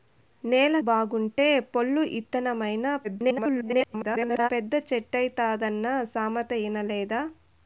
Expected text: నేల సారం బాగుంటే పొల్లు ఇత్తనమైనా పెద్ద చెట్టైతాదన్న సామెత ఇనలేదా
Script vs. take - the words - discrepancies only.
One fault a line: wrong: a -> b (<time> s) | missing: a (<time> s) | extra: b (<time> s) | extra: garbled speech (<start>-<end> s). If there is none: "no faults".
missing: సారం (0.8 s)
extra: garbled speech (3.0-4.5 s)